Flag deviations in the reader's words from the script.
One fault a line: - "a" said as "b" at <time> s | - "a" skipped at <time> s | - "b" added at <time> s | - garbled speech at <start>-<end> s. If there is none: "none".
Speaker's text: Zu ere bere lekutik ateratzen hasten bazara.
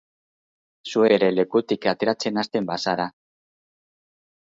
- "ere" skipped at 1.0 s